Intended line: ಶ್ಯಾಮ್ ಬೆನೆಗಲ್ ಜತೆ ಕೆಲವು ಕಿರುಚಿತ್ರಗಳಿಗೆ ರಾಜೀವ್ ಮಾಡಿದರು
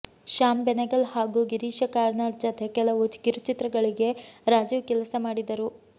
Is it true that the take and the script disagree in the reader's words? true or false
true